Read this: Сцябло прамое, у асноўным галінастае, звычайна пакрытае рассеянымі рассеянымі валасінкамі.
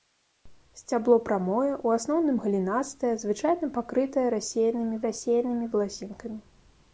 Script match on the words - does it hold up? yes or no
yes